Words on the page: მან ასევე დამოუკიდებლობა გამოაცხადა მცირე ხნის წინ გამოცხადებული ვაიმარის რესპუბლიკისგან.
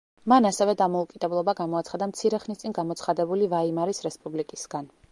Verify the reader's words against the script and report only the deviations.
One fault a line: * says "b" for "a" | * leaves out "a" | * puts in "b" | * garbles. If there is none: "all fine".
all fine